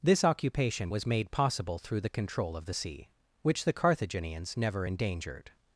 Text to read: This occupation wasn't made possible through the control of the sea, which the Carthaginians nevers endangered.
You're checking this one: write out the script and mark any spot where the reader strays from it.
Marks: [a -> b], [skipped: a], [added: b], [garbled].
This occupation [wasn't -> was] made possible through the control of the sea, which the Carthaginians [nevers -> never] endangered.